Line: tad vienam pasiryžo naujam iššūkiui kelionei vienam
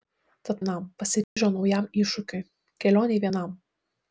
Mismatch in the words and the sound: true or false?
true